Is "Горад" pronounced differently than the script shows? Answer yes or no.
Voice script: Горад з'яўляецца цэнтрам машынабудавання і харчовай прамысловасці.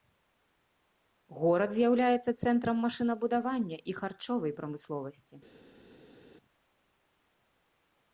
no